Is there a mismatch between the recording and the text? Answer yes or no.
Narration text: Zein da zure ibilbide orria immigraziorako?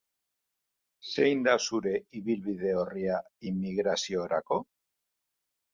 no